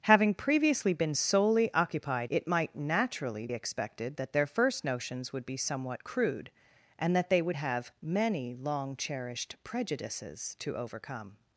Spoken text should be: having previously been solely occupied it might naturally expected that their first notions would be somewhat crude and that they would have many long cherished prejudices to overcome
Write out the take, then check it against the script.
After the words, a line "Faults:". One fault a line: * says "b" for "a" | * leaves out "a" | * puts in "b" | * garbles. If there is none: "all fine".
having previously been solely occupied it might naturally expected that their first notions would be somewhat crude and that they would have many long cherished prejudices to overcome
Faults:
all fine